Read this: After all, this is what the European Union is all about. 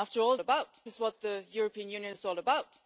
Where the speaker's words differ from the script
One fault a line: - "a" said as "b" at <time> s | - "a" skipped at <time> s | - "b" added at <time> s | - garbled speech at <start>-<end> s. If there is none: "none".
- "this" said as "about" at 0.4 s